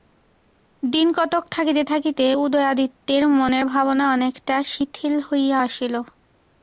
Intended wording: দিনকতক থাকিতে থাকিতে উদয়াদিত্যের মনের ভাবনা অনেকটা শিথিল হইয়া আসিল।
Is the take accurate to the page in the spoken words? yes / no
yes